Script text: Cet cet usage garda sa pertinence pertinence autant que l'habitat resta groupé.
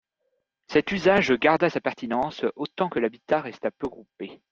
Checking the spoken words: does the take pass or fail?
fail